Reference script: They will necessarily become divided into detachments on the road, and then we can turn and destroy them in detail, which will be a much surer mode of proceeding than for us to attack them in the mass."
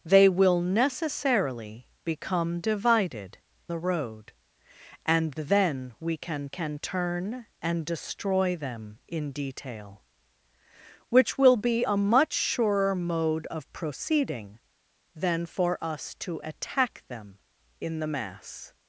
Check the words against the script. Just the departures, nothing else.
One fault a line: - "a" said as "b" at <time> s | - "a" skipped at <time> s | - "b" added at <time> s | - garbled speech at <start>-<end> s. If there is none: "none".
- "into detachments on" skipped at 3.4 s
- "can" added at 6.5 s